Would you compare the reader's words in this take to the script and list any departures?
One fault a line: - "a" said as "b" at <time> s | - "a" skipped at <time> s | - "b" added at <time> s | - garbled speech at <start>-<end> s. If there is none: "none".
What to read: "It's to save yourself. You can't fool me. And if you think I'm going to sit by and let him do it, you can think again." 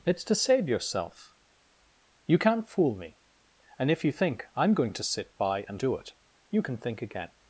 - "let him" skipped at 5.8 s